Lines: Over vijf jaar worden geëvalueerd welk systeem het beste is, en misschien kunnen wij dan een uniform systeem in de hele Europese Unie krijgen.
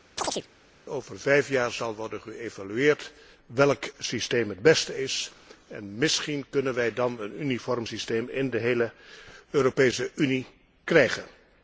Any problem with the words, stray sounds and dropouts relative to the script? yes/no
yes